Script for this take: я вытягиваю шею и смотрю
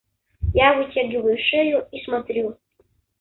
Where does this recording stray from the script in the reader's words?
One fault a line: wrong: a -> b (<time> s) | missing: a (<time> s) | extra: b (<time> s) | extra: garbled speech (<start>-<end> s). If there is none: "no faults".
no faults